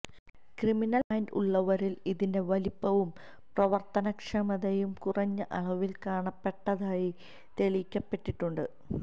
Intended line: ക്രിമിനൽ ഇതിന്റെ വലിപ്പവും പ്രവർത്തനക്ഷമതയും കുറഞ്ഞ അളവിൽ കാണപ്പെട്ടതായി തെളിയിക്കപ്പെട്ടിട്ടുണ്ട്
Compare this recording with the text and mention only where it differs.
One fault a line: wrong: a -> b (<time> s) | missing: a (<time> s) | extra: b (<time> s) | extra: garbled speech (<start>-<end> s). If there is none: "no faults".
extra: മൈൻഡ് ഉള്ളവരിൽ (1.1 s)